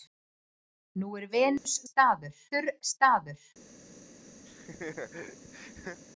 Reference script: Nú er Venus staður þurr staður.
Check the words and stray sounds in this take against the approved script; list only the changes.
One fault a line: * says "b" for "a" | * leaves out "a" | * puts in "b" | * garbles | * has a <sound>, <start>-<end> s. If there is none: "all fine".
* has a dropout, 1.6-1.7 s
* has a laugh, 4.5-6.0 s